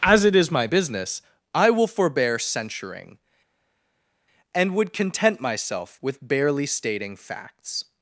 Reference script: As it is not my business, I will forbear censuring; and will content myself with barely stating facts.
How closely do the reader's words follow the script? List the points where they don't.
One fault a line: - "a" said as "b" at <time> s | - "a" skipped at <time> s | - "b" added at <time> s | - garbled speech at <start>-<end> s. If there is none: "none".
- "not" skipped at 0.5 s
- "will" said as "would" at 4.7 s